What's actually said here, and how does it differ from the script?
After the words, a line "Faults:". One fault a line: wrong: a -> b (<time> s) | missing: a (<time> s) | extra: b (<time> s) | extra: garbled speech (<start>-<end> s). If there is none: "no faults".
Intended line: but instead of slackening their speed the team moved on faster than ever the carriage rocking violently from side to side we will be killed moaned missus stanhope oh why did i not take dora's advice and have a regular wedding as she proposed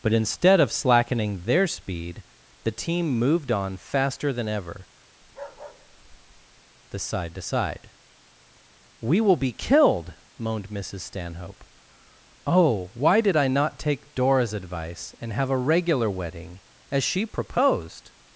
but instead of slackening their speed the team moved on faster than ever the side to side we will be killed moaned missus stanhope oh why did i not take dora's advice and have a regular wedding as she proposed
Faults:
missing: carriage rocking violently from (7.0 s)